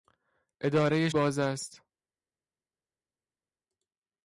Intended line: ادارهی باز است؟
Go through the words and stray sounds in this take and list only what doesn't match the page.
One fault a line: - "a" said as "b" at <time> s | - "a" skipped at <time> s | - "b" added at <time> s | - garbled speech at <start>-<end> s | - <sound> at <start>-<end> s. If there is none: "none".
none